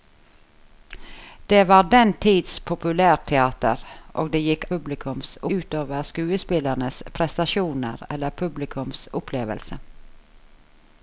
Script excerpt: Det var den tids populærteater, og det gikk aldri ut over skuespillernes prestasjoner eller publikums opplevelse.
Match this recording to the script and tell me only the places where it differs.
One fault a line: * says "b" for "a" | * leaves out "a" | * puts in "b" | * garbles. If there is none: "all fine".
* says "publikums" for "aldri"